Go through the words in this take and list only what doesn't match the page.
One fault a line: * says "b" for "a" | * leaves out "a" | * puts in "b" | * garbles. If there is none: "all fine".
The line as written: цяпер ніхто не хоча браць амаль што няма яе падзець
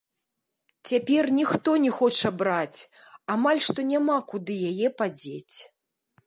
* puts in "куды"